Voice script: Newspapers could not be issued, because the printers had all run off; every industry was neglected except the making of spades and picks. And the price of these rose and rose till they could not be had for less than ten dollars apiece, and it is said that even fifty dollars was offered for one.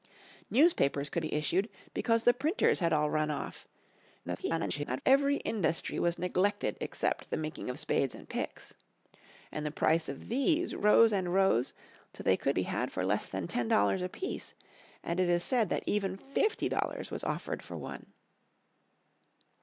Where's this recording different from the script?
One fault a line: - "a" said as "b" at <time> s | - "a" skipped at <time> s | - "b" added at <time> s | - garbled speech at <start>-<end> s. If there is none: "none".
- "not" skipped at 1.2 s
- garbled speech at 4.2-5.0 s
- "not" skipped at 12.5 s